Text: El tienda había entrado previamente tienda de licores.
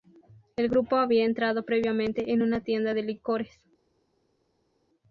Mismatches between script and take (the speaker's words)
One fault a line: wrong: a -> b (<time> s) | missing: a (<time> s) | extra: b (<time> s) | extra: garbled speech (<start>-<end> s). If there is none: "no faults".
wrong: tienda -> grupo (0.7 s)
extra: en una (2.3 s)